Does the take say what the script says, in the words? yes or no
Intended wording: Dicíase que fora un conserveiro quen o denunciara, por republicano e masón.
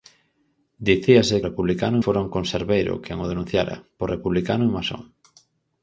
no